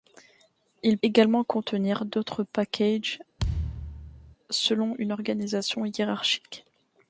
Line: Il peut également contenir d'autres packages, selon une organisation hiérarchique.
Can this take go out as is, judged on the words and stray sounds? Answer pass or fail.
fail